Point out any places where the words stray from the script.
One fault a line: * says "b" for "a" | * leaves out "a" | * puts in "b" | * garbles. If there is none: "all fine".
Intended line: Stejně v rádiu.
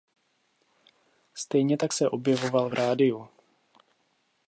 * puts in "tak se objevoval"